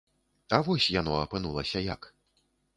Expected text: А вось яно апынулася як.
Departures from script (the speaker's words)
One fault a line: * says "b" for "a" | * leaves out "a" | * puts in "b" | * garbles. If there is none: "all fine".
all fine